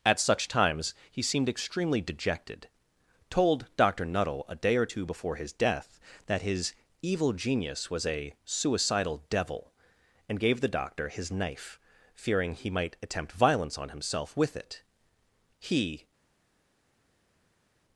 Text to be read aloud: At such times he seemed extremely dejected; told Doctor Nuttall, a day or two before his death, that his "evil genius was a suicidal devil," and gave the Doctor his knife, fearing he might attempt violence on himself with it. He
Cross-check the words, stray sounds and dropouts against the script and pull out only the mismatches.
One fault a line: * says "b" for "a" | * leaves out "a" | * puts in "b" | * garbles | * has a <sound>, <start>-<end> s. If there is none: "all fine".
all fine